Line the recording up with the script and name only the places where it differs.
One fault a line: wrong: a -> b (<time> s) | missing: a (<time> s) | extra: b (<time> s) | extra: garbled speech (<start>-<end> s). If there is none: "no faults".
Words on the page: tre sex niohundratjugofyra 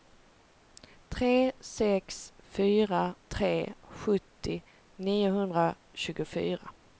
extra: fyra tre sjuttio (2.5 s)